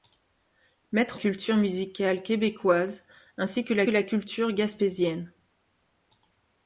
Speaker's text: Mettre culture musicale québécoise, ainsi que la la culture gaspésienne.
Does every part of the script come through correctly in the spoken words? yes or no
yes